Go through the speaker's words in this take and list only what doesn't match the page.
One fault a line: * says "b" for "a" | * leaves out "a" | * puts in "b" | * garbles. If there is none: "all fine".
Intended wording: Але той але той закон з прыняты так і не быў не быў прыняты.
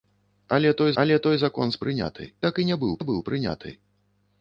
all fine